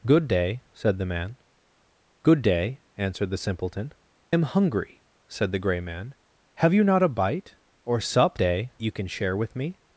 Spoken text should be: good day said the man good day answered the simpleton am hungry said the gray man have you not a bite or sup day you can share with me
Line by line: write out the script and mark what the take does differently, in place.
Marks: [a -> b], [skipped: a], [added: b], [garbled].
good day said the man good day answered the simpleton am hungry said the gray man have you not a bite or sup day you can share with me